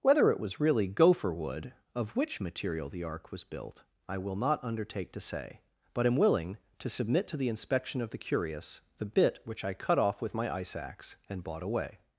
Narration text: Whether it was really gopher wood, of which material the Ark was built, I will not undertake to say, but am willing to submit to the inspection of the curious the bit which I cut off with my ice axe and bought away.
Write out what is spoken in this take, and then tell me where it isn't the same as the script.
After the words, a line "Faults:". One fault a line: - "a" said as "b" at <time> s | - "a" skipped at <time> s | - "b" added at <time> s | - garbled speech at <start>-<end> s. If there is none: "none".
Whether it was really gopher wood, of which material the Ark was built, I will not undertake to say, but am willing to submit to the inspection of the curious the bit which I cut off with my ice axe and bought away.
Faults:
none